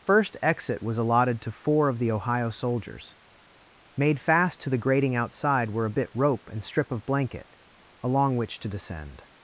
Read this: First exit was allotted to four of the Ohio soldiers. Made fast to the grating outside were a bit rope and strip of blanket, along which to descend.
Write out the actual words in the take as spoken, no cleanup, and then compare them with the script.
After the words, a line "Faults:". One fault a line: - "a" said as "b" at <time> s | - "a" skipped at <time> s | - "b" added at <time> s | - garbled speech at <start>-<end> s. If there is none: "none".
First exit was allotted to four of the Ohio soldiers. Made fast to the grating outside were a bit rope and strip of blanket, along which to descend.
Faults:
none